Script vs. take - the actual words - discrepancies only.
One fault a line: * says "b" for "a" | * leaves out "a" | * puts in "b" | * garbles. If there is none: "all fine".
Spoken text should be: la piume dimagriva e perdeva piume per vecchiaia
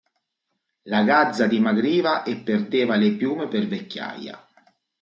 * says "gazza" for "piume"
* puts in "le"